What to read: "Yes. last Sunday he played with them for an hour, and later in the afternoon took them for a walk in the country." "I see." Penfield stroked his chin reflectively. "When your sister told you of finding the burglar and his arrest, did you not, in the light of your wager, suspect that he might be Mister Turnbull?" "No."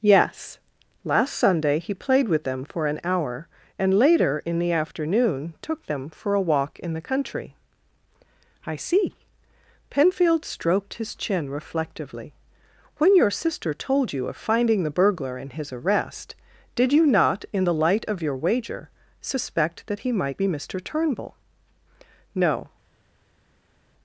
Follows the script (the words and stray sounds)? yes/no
yes